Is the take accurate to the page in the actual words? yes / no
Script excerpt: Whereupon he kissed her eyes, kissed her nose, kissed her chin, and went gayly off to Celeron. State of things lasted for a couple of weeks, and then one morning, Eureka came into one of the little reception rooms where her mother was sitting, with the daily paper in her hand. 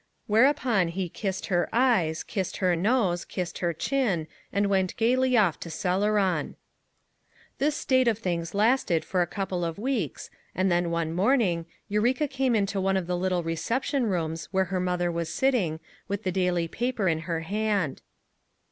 no